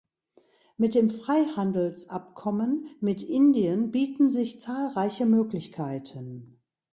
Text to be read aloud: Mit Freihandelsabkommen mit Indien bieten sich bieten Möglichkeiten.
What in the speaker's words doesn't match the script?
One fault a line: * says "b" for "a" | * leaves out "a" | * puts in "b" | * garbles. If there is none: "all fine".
* puts in "dem"
* says "zahlreiche" for "bieten"